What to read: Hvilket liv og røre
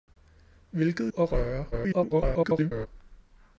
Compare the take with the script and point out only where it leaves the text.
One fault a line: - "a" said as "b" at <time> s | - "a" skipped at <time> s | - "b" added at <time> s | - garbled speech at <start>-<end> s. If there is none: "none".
- "liv" skipped at 1.1 s
- garbled speech at 1.7-2.9 s